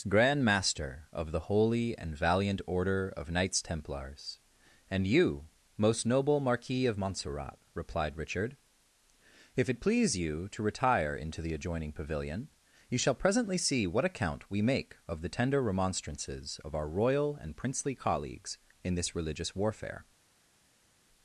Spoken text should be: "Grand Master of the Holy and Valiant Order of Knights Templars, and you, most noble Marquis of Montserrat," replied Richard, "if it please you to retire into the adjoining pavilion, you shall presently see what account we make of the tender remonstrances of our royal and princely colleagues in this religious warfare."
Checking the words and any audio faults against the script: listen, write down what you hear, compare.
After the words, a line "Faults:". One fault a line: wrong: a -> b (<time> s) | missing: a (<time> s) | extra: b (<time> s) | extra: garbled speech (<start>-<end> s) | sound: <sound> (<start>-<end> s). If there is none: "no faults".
"Grand Master of the Holy and Valiant Order of Knights Templars, and you, most noble Marquis of Montserrat," replied Richard, "if it please you to retire into the adjoining pavilion, you shall presently see what account we make of the tender remonstrances of our royal and princely colleagues in this religious warfare."
Faults:
no faults